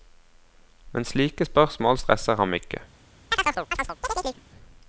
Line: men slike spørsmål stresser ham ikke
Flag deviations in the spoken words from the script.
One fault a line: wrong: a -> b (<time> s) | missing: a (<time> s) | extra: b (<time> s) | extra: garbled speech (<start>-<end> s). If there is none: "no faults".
no faults